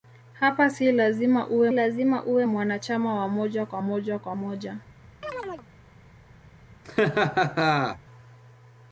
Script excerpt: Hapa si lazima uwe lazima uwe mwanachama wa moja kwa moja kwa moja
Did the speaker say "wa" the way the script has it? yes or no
yes